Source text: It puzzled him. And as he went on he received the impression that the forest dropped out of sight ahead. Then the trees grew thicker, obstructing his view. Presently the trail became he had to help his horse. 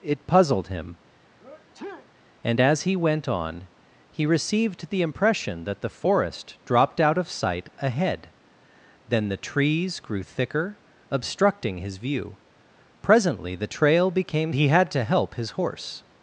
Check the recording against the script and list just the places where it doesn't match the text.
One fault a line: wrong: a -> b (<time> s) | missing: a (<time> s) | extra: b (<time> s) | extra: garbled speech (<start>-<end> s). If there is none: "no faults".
no faults